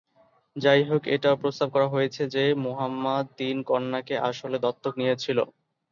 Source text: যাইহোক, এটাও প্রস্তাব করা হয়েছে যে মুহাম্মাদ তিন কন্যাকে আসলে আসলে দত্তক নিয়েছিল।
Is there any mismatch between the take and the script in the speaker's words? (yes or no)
yes